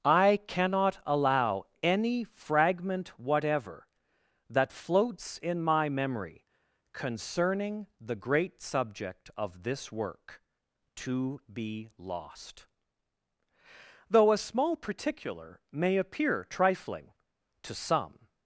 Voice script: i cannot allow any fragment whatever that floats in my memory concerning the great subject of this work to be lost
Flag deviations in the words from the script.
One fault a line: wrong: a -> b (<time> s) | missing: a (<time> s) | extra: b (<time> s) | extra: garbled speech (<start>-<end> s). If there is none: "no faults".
extra: though a small particular may appear trifling to some (14.1 s)